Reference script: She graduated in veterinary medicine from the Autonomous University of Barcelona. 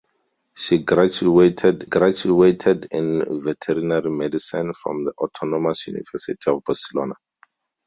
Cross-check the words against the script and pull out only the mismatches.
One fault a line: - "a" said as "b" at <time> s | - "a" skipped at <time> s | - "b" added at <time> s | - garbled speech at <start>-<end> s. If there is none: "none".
- "graduated" added at 1.8 s